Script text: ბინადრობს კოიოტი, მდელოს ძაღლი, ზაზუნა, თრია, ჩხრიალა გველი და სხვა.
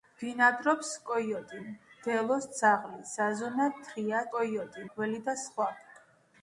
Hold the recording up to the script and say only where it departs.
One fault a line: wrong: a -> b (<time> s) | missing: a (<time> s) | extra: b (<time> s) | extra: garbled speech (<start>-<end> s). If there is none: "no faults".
wrong: ჩხრიალა -> კოიოტი (4.3 s)